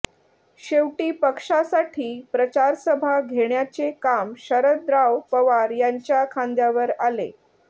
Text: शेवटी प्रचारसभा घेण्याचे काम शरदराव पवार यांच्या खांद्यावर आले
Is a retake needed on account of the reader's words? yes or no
yes